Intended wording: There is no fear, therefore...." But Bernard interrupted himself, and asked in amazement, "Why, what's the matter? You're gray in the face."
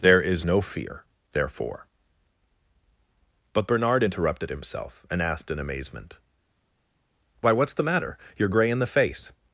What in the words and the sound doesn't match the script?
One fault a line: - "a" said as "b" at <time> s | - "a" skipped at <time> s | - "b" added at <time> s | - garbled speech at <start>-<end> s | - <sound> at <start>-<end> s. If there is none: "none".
none